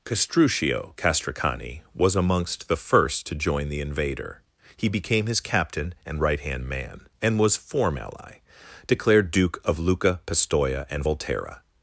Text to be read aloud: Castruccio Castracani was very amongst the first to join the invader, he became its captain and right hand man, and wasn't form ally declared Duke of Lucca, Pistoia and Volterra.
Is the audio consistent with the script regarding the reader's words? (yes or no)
no